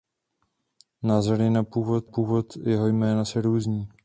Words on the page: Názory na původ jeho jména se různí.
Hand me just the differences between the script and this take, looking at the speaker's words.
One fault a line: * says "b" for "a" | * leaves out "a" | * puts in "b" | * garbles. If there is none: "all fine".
* puts in "původ"